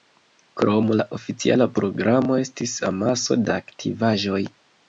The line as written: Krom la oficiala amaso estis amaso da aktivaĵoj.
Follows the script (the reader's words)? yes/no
no